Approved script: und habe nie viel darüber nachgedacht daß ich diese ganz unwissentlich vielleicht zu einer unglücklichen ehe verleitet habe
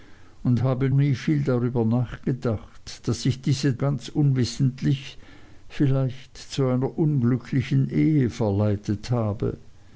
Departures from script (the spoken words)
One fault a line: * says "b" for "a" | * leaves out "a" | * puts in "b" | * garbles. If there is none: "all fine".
all fine